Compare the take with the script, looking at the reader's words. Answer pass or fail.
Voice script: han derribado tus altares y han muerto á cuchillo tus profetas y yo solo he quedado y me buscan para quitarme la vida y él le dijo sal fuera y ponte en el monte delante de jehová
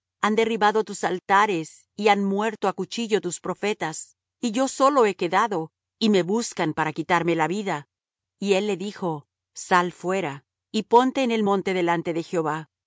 pass